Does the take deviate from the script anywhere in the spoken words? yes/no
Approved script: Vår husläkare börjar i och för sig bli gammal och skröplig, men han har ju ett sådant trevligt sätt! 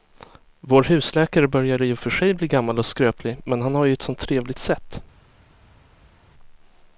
no